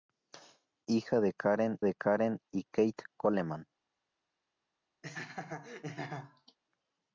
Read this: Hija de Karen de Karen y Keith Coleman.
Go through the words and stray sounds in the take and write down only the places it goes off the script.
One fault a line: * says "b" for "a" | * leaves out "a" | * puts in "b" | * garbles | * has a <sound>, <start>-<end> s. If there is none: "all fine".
* has a laugh, 5.0-6.6 s